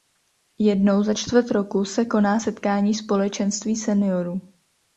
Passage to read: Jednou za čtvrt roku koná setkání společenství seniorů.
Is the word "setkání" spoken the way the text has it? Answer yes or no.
yes